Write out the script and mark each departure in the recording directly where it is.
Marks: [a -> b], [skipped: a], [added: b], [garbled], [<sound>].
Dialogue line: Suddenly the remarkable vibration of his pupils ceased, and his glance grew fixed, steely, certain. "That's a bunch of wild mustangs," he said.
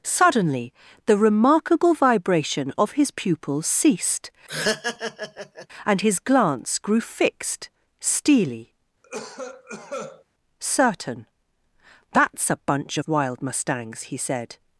Suddenly the remarkable vibration of his pupils ceased, [laugh] and his glance grew fixed, steely, [cough] certain. "That's a bunch of wild mustangs," he said.